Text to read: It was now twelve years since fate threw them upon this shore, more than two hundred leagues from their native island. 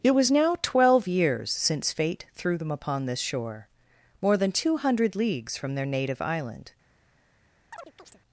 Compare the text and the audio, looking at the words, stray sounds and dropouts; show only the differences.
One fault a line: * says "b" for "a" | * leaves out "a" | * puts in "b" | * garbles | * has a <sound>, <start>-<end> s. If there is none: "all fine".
* has a chirp, 7.7-8.2 s